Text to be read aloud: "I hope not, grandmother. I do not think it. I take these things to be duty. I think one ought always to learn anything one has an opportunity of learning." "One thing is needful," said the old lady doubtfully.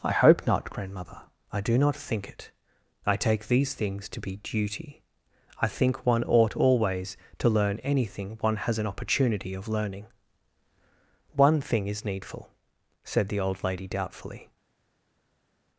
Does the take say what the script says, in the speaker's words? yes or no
yes